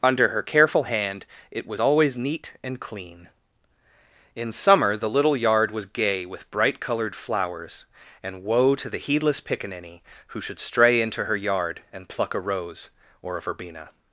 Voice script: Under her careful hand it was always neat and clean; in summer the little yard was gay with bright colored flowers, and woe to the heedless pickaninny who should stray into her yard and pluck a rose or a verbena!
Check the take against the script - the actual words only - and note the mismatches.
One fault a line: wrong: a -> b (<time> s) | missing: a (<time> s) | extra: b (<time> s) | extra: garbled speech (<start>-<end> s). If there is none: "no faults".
no faults